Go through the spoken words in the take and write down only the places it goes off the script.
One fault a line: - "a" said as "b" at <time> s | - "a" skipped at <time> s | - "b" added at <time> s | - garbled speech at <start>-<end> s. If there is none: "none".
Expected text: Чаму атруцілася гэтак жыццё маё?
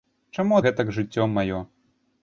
- "атруцілася" skipped at 0.6 s